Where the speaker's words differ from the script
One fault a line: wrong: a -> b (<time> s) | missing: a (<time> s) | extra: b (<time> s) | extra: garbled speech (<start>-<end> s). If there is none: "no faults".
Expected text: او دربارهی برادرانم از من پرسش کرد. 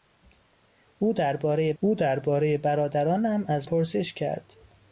extra: او دربارهی (1.8 s)
missing: من (3.7 s)